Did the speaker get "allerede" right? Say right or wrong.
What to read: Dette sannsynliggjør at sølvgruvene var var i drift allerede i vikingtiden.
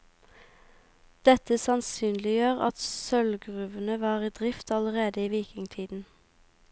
right